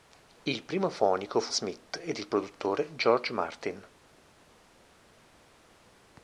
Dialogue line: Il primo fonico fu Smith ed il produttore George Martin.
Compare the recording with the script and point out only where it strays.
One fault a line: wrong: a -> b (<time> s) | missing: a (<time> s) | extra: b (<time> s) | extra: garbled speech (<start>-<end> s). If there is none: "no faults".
no faults